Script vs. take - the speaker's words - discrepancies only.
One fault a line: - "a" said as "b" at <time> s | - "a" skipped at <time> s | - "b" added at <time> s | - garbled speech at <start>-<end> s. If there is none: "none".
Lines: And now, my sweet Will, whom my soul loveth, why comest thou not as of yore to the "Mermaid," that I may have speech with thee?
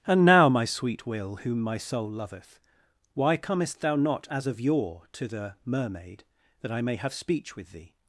none